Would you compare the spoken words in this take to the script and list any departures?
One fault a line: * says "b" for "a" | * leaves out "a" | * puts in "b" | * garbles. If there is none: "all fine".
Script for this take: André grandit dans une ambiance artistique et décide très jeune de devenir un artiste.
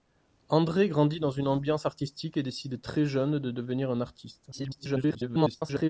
* garbles